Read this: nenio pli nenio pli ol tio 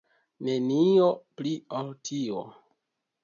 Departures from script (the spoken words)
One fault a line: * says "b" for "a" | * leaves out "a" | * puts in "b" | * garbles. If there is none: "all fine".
* leaves out "nenio pli"